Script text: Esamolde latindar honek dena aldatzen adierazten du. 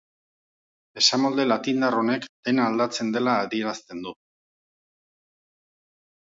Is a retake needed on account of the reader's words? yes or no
yes